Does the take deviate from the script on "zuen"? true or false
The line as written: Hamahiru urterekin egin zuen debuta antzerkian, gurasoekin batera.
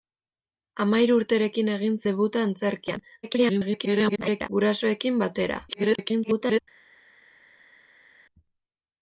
true